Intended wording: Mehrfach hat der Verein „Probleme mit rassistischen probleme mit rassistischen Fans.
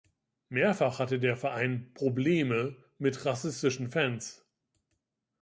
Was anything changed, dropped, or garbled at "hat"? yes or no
yes